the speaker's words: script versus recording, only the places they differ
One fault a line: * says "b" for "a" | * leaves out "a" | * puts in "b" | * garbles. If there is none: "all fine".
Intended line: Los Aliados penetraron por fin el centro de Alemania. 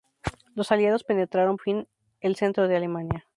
* leaves out "por"